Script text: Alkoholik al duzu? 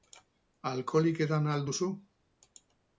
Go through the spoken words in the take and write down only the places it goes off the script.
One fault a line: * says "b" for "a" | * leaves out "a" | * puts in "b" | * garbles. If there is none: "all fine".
* puts in "edan"